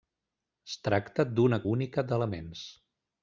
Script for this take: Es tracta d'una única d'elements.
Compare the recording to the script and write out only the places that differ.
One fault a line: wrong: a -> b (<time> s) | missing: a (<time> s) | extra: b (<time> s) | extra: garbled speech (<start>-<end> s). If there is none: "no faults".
no faults